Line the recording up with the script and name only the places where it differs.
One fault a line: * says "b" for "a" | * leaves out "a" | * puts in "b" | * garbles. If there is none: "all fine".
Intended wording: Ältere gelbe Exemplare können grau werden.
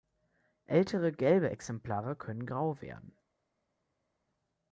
all fine